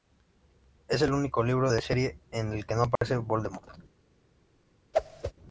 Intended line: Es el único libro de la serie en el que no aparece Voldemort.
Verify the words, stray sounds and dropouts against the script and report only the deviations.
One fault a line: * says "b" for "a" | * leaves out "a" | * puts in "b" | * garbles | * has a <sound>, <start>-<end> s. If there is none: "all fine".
* has a dropout, 3.0-3.0 s
* has a whoosh, 4.9-5.3 s